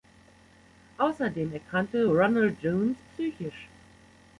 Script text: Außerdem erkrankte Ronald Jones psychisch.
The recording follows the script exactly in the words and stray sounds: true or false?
true